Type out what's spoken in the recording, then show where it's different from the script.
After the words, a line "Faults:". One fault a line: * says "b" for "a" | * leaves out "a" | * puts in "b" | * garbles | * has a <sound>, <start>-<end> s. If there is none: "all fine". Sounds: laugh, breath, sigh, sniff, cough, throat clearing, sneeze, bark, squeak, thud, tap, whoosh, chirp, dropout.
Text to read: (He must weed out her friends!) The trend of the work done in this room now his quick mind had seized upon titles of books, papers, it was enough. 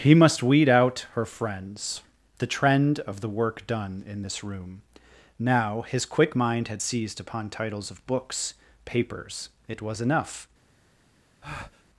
(He must weed out her friends!) The trend of the work done in this room now his quick mind had seized upon titles of books, papers, it was enough.
Faults:
* has a breath, 11.4-11.8 s